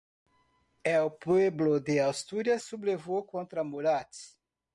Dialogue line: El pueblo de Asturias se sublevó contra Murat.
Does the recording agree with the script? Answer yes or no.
no